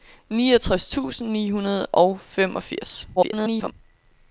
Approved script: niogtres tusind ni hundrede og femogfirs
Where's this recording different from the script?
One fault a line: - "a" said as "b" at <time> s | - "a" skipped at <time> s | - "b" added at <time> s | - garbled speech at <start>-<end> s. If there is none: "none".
- garbled speech at 3.2-3.7 s